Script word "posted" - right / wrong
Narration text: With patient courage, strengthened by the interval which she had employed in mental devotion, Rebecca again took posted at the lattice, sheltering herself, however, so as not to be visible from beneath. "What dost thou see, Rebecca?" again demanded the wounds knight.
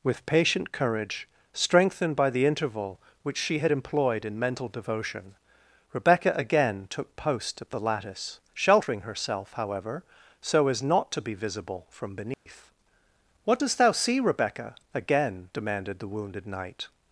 wrong